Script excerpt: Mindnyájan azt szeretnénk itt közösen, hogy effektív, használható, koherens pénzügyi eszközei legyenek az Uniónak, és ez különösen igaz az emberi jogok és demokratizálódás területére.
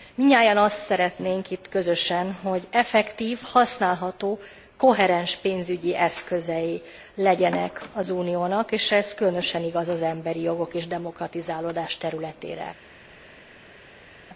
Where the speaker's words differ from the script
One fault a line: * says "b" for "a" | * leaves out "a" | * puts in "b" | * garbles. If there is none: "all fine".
all fine